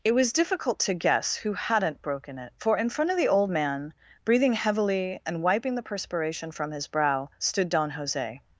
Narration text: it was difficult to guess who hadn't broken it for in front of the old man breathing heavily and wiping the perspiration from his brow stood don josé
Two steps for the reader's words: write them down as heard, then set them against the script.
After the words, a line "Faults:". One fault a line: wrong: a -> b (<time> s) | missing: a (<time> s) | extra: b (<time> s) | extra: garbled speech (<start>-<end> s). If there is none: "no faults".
it was difficult to guess who hadn't broken it for in front of the old man breathing heavily and wiping the perspiration from his brow stood don josé
Faults:
no faults